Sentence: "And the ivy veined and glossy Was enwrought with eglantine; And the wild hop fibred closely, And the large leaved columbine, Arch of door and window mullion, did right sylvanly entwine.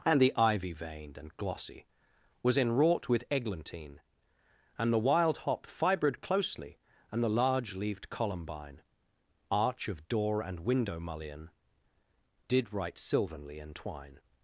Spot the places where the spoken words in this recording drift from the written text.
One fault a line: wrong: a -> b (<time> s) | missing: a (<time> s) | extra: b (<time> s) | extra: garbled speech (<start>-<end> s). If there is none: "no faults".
no faults